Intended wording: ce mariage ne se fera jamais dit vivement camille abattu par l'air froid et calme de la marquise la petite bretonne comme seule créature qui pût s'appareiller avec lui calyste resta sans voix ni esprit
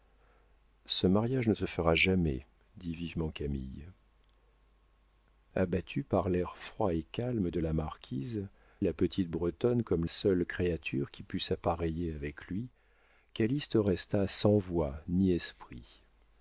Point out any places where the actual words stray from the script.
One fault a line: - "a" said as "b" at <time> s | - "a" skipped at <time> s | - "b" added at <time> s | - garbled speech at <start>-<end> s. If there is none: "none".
none